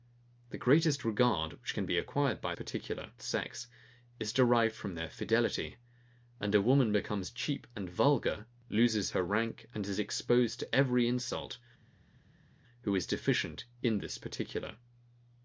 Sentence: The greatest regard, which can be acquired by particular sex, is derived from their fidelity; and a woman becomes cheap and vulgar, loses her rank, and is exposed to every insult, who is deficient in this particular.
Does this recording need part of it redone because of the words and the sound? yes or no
no